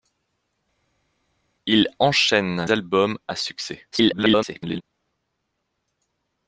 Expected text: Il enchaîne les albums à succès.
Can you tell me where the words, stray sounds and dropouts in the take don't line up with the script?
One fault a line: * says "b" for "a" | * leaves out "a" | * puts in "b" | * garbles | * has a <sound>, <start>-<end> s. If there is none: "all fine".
* leaves out "les"
* garbles